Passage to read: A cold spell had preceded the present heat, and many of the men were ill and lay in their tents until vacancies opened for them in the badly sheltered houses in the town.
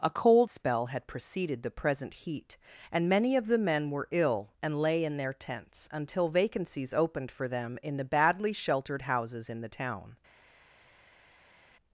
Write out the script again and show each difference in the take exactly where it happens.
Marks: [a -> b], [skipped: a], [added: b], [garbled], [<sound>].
A cold spell had preceded the present heat, and many of the men were ill and lay in their tents until vacancies opened for them in the badly sheltered houses in the town.